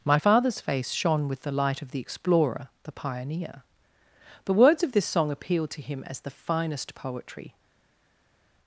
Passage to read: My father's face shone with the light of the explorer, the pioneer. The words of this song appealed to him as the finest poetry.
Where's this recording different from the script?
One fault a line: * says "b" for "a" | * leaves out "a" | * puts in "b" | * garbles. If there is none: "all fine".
all fine